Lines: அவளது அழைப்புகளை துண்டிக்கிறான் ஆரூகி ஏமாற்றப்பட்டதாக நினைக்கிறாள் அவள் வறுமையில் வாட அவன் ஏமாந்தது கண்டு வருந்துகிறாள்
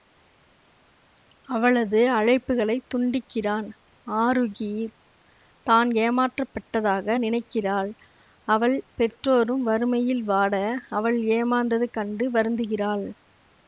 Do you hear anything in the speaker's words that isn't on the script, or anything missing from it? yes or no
yes